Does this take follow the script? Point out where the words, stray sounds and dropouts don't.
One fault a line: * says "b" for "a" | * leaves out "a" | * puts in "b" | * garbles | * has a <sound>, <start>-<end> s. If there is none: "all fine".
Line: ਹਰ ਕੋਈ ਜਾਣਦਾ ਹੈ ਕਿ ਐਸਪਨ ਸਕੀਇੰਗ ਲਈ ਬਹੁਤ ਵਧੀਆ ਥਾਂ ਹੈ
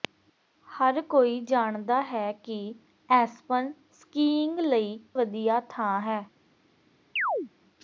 * leaves out "ਬਹੁਤ"
* has a chirp, 7.2-7.5 s